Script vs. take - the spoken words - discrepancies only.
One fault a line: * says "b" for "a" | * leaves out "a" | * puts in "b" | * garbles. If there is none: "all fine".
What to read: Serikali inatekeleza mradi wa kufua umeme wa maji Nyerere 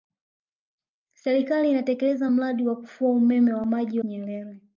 all fine